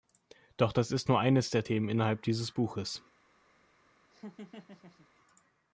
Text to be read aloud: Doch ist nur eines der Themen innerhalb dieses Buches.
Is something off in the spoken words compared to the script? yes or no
yes